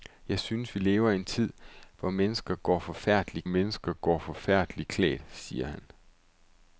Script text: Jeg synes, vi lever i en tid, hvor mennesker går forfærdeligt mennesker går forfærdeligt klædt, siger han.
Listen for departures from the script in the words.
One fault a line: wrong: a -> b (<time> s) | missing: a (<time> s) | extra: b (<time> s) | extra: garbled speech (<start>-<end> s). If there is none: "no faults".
no faults